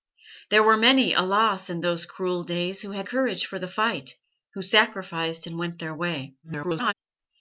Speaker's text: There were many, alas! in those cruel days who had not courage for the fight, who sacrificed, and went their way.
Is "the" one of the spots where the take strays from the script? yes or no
no